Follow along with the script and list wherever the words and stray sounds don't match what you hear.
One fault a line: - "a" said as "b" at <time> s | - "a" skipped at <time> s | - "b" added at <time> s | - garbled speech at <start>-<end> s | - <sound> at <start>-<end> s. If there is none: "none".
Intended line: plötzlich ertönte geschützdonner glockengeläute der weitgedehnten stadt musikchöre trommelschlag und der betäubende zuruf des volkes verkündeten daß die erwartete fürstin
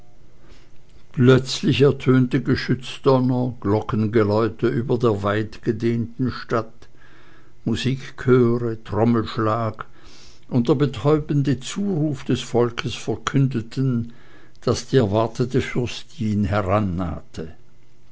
- "über" added at 4.7 s